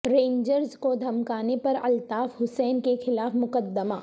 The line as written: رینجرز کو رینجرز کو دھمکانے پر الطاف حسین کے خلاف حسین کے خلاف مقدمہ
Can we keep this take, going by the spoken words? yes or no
no